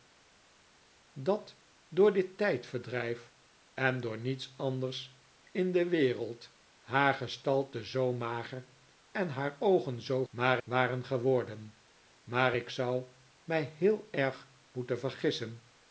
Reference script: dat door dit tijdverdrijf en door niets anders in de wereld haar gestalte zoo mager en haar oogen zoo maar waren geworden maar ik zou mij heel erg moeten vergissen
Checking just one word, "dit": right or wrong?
right